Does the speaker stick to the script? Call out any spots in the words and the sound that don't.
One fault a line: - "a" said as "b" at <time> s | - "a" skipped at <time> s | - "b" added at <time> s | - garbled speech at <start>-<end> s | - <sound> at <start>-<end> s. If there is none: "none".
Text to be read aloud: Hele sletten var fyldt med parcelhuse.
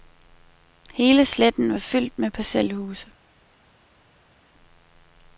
none